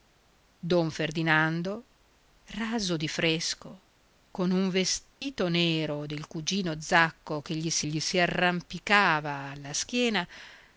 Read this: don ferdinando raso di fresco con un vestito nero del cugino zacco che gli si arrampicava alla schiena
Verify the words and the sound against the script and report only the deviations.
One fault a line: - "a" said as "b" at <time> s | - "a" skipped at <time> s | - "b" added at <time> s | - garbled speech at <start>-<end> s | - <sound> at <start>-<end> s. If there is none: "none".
- dropout at 5.1-5.2 s
- "gli si" added at 7.8 s